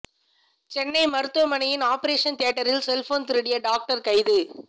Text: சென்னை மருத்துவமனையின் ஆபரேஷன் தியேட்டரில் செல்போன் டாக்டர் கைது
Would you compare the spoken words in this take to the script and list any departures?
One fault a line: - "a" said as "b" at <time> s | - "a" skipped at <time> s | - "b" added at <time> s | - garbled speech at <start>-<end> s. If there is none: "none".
- "திருடிய" added at 3.3 s